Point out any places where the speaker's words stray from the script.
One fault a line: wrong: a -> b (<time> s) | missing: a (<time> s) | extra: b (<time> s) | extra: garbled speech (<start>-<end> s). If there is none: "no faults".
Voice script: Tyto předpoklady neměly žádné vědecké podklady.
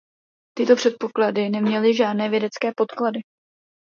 no faults